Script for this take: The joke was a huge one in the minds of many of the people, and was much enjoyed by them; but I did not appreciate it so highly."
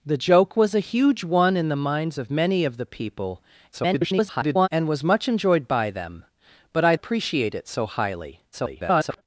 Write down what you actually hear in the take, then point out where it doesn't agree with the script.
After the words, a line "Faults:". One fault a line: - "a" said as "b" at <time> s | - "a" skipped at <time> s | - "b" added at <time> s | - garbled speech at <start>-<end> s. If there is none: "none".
The joke was a huge one in the minds of many of the people, [garbled] and was much enjoyed by them; but I appreciate it so highly." [garbled]
Faults:
- garbled speech at 3.7-4.7 s
- "did not" skipped at 6.9 s
- garbled speech at 8.5-9.2 s